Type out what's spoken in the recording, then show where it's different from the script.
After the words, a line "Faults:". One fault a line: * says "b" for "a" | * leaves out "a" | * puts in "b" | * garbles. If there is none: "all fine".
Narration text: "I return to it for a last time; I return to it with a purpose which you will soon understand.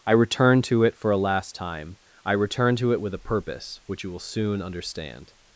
"I return to it for a last time; I return to it with a purpose which you will soon understand.
Faults:
all fine